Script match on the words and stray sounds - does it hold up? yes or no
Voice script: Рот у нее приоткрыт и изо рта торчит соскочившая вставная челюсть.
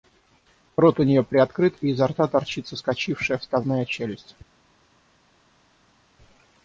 yes